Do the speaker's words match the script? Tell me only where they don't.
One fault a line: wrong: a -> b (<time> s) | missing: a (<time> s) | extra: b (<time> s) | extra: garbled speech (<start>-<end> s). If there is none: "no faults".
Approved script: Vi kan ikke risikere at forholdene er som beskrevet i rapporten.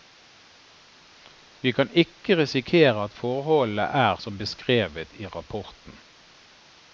no faults